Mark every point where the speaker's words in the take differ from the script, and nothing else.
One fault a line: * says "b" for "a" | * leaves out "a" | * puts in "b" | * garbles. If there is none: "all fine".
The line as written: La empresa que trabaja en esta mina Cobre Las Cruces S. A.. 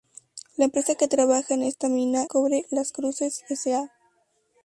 all fine